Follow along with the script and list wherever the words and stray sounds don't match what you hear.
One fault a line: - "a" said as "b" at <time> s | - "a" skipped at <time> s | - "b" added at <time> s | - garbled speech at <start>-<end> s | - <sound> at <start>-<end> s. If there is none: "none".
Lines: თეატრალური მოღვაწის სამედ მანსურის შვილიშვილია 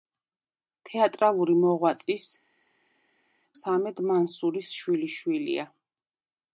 none